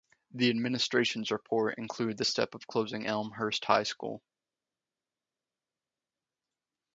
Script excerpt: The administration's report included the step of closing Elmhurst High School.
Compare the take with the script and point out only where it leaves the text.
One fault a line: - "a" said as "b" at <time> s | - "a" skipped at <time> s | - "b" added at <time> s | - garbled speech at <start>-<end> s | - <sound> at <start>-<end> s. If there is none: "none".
none